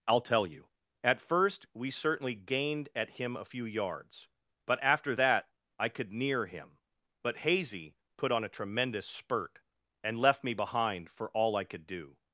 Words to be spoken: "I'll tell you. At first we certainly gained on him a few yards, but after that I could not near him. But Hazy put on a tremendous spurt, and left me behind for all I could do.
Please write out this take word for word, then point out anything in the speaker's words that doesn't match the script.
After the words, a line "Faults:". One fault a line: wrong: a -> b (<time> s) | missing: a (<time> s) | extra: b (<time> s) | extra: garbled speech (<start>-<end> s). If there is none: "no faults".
"I'll tell you. At first we certainly gained at him a few yards, but after that I could near him. But Hazy put on a tremendous spurt, and left me behind for all I could do.
Faults:
wrong: on -> at (3.0 s)
missing: not (6.1 s)